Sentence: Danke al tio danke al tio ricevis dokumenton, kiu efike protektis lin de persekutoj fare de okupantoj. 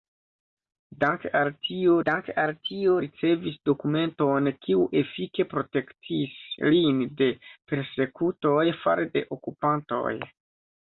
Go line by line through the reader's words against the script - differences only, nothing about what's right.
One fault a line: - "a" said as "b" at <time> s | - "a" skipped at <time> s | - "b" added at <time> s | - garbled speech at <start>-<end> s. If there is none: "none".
none